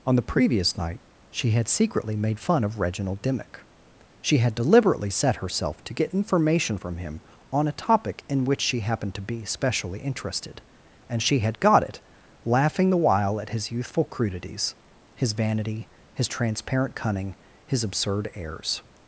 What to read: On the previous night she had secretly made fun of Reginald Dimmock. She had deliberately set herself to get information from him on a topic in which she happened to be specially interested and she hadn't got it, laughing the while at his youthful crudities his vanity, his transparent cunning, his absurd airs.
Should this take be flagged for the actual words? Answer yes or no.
yes